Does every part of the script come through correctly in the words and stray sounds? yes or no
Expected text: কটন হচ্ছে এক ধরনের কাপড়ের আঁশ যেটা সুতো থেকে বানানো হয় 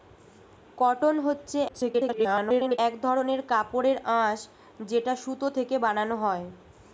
no